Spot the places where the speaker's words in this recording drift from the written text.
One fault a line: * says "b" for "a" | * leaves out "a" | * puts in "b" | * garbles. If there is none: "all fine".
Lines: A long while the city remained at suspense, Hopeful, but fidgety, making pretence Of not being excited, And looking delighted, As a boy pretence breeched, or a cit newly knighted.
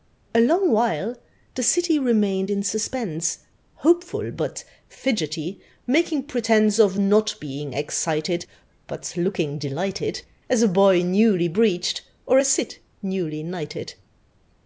* says "in" for "at"
* says "But" for "And"
* says "newly" for "pretence"